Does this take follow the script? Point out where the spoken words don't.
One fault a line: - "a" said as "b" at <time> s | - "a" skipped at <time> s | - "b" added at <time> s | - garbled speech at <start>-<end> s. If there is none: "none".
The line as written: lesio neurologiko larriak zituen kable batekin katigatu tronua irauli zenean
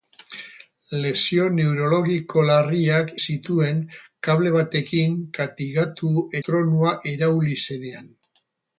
none